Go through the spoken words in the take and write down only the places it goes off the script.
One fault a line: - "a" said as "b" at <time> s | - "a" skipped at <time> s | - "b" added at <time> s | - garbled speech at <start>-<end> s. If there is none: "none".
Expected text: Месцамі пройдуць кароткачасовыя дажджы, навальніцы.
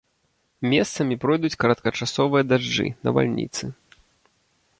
none